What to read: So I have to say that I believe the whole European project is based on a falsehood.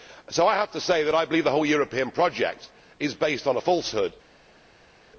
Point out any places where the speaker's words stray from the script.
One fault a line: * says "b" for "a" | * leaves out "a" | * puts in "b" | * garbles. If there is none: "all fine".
all fine